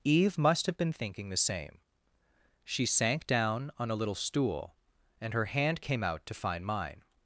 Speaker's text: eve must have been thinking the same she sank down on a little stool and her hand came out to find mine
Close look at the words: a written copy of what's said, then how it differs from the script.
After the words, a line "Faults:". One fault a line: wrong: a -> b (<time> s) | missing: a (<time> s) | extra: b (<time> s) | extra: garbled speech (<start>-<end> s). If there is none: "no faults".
eve must have been thinking the same she sank down on a little stool and her hand came out to find mine
Faults:
no faults